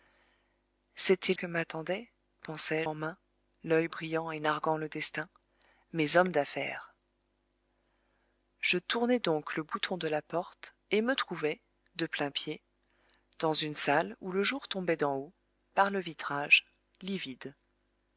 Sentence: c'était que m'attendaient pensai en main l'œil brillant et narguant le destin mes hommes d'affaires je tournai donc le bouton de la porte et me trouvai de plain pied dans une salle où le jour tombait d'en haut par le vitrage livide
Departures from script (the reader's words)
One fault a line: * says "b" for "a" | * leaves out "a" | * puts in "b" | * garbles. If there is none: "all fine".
all fine